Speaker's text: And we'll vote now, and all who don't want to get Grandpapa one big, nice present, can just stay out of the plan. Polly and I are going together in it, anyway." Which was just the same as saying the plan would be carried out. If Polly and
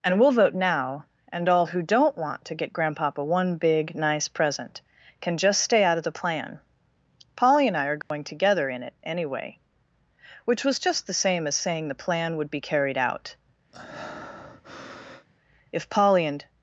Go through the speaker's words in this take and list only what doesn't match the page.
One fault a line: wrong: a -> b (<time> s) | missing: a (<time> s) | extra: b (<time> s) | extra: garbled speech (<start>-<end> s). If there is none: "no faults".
no faults